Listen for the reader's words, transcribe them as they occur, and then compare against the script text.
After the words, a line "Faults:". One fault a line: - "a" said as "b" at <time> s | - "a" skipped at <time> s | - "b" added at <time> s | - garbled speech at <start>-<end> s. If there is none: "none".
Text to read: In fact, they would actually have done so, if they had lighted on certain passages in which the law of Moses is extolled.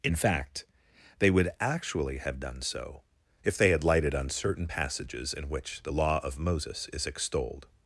In fact, they would actually have done so, if they had lighted on certain passages in which the law of Moses is extolled.
Faults:
none